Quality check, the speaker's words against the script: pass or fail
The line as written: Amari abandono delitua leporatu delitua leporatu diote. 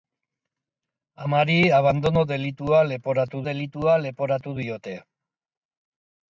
pass